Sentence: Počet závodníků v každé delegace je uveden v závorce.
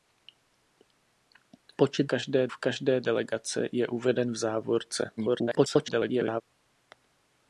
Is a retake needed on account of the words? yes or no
yes